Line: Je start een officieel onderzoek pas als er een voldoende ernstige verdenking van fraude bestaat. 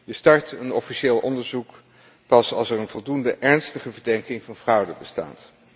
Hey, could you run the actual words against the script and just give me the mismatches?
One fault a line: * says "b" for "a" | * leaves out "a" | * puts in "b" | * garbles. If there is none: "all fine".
all fine